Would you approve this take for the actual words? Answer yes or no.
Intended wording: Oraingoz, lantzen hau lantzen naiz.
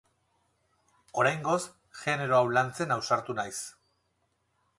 no